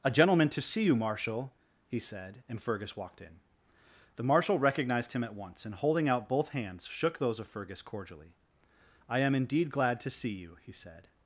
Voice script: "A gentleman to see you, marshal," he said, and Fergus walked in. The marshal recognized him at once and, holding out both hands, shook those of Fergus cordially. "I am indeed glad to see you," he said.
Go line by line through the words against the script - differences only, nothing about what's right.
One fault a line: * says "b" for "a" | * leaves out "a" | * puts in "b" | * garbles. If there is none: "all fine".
all fine